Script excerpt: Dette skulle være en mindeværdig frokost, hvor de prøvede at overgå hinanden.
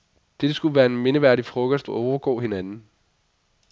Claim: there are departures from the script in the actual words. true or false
true